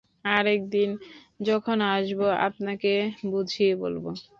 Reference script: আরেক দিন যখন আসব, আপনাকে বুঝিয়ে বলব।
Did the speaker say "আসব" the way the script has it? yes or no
yes